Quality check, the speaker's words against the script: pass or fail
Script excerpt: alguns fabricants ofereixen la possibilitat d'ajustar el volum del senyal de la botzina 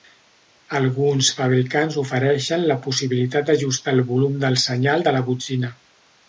pass